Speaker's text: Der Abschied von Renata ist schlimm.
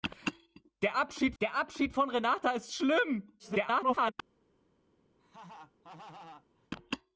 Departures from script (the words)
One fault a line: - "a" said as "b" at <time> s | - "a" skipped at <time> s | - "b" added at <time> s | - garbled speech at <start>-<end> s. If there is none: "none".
- "der Abschied" added at 1.4 s
- garbled speech at 3.4-4.1 s